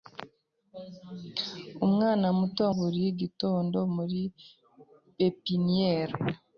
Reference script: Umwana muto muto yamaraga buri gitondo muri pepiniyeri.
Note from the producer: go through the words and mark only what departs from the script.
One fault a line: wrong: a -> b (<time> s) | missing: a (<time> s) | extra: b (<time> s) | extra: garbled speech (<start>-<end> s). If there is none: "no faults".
missing: muto yamaraga (2.6 s)